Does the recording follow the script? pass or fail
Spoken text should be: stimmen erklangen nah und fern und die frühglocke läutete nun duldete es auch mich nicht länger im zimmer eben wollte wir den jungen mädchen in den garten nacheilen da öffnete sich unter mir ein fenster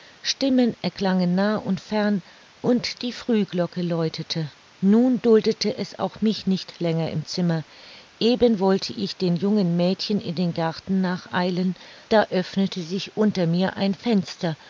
fail